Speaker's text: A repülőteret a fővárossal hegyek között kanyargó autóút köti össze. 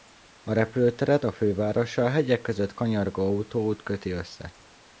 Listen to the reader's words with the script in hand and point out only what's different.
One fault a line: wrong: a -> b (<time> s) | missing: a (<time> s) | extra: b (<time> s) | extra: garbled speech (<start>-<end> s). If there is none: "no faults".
no faults